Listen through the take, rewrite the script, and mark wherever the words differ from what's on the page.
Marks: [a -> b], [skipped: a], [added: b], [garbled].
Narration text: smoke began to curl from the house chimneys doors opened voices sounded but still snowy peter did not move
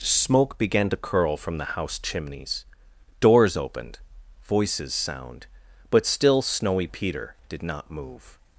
smoke began to curl from the house chimneys doors opened voices [sounded -> sound] but still snowy peter did not move